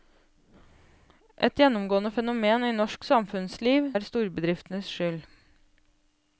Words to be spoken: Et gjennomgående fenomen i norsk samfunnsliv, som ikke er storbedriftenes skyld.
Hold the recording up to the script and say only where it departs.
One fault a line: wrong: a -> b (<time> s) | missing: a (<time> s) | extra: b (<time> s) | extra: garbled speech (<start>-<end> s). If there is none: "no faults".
missing: som ikke (3.9 s)